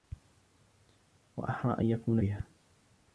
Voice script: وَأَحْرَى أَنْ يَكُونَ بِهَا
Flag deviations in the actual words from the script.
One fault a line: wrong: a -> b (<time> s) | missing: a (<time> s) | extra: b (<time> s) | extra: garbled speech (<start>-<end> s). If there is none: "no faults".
no faults